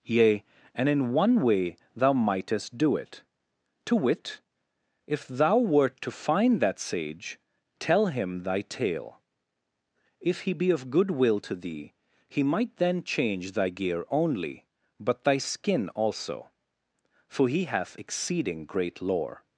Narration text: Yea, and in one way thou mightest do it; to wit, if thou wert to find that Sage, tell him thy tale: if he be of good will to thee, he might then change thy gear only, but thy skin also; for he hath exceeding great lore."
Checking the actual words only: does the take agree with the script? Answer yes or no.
yes